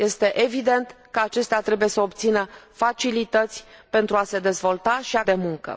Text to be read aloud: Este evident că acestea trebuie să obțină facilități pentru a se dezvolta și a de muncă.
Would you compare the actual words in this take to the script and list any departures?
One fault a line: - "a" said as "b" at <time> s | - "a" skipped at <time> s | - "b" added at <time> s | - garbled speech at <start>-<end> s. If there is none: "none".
none